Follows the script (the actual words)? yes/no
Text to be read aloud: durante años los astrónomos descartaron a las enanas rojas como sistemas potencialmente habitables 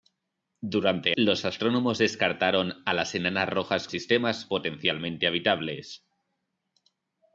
no